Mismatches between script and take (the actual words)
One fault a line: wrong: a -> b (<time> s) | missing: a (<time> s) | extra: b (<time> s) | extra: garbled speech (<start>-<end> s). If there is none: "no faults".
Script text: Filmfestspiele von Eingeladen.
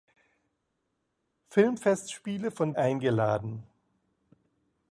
no faults